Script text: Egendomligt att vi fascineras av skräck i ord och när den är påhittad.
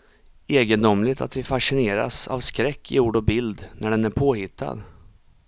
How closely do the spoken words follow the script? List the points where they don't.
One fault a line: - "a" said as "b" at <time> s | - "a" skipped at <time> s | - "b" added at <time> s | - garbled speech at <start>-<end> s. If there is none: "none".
- "bild" added at 3.2 s